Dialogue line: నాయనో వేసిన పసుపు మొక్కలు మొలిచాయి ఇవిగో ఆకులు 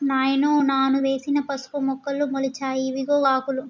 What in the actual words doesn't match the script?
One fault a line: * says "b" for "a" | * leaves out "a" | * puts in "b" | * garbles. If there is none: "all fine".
* puts in "నాను"